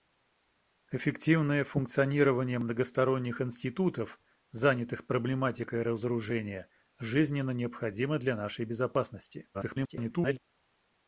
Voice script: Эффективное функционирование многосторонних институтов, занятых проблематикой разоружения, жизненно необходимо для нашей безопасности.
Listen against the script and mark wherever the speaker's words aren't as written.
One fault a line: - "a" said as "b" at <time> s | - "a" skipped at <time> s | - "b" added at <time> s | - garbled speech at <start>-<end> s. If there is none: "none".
- garbled speech at 9.5-10.4 s